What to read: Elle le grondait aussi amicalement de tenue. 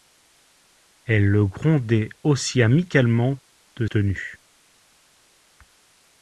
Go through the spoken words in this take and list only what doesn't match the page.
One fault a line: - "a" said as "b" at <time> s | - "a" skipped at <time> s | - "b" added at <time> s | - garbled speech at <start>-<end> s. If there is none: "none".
none